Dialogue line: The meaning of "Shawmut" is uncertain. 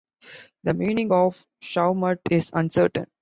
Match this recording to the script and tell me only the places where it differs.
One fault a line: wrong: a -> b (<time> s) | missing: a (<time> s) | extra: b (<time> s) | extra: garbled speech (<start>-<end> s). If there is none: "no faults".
no faults